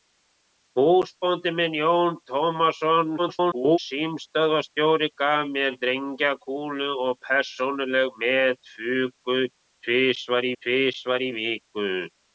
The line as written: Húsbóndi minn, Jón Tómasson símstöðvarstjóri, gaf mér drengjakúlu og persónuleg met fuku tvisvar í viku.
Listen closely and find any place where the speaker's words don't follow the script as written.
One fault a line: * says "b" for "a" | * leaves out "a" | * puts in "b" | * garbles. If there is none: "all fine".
* garbles
* puts in "tvisvar"